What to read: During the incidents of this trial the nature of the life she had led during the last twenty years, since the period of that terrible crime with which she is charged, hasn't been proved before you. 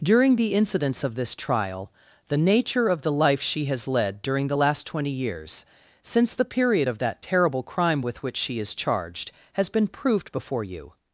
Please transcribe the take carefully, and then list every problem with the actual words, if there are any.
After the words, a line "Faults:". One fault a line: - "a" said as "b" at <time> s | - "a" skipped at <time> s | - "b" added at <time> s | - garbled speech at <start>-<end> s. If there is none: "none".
During the incidents of this trial the nature of the life she has led during the last twenty years, since the period of that terrible crime with which she is charged, has been proved before you.
Faults:
- "had" said as "has" at 3.6 s
- "hasn't" said as "has" at 9.5 s